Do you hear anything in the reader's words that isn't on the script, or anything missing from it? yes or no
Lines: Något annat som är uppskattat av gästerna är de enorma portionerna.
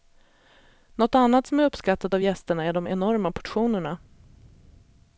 no